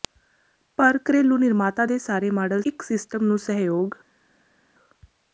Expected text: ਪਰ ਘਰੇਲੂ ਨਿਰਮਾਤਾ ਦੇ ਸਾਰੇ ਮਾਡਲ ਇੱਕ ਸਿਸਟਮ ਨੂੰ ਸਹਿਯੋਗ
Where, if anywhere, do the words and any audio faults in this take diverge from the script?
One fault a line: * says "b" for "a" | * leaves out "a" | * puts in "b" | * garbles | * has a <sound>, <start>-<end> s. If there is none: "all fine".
all fine